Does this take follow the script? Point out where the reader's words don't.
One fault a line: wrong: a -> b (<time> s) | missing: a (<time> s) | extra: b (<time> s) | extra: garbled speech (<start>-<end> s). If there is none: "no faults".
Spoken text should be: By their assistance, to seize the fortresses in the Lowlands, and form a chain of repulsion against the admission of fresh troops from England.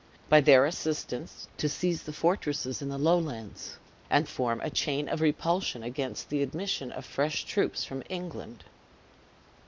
no faults